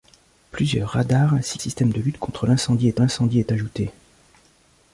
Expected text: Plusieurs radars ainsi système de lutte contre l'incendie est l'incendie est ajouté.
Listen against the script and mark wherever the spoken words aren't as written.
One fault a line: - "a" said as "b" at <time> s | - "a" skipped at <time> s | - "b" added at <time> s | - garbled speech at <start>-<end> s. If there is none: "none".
none